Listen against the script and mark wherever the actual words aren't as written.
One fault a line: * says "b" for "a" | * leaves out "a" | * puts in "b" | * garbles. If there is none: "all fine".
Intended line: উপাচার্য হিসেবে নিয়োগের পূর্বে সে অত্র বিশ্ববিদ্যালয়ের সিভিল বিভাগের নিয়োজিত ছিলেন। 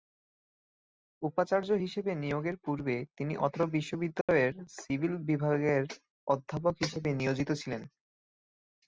* says "তিনি" for "সে"
* puts in "অধ্যাপক হিসেবে"